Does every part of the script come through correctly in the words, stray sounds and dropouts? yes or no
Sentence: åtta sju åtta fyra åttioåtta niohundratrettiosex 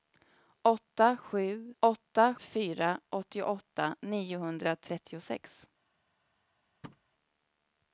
no